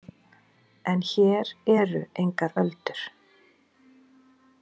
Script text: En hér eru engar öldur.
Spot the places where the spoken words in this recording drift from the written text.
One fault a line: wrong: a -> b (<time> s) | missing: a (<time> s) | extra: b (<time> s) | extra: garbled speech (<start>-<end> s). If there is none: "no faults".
no faults